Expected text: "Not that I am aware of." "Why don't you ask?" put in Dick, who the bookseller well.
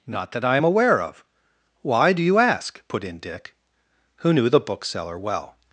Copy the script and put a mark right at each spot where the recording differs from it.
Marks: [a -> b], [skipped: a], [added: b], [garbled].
"Not that I am aware of." "Why [don't -> do] you ask?" put in Dick, who [added: knew] the bookseller well.